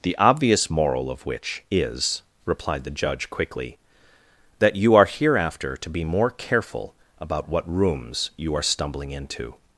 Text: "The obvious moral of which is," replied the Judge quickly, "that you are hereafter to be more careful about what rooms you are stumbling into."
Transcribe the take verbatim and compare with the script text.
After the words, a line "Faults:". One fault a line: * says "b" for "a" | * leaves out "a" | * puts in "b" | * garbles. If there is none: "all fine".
"The obvious moral of which is," replied the Judge quickly, "that you are hereafter to be more careful about what rooms you are stumbling into."
Faults:
all fine